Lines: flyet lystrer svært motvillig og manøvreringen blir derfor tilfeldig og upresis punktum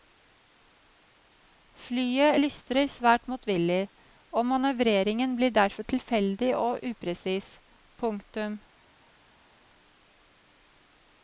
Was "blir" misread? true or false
false